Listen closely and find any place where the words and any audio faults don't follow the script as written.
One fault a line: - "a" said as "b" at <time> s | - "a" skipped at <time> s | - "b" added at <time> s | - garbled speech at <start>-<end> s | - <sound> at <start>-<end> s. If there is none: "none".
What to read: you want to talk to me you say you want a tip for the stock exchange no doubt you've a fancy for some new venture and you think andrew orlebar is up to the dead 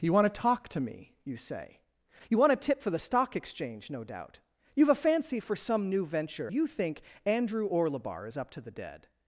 - "and" skipped at 6.5 s